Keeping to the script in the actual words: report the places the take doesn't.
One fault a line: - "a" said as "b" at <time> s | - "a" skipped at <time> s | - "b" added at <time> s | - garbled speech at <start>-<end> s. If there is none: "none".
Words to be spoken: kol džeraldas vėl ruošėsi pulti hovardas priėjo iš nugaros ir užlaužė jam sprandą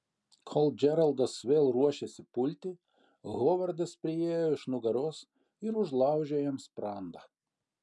none